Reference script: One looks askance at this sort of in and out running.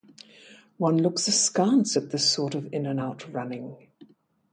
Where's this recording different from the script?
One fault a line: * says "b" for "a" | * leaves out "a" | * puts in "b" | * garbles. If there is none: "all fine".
all fine